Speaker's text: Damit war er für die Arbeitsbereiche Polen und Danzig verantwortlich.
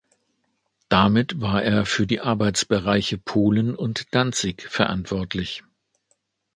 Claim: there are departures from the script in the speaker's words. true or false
false